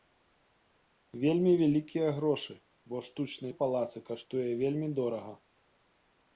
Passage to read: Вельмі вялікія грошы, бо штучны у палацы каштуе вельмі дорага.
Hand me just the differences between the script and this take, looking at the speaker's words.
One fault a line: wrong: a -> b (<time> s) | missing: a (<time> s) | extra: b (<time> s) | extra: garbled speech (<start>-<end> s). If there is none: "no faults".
no faults